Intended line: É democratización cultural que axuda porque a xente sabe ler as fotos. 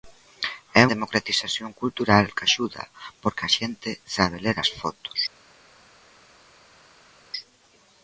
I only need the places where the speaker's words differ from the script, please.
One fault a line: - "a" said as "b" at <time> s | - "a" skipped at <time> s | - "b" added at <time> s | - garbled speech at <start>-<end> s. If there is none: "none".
none